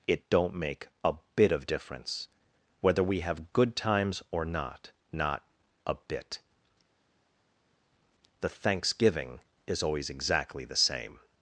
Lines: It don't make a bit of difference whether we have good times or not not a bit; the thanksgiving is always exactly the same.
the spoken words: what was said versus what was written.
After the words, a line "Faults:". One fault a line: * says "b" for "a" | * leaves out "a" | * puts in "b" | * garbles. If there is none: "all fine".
It don't make a bit of difference whether we have good times or not not a bit; the thanksgiving is always exactly the same.
Faults:
all fine